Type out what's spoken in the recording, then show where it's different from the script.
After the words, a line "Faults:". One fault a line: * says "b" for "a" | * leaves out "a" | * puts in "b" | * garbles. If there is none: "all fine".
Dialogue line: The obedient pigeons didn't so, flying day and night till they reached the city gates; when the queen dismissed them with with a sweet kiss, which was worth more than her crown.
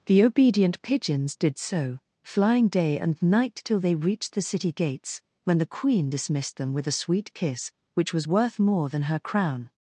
The obedient pigeons did so, flying day and night till they reached the city gates; when the queen dismissed them with a sweet kiss, which was worth more than her crown.
Faults:
* says "did" for "didn't"
* leaves out "with"